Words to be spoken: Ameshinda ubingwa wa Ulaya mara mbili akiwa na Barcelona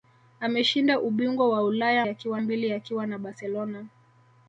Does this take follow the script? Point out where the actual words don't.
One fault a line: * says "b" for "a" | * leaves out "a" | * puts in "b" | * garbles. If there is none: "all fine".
* says "akiwa" for "mara"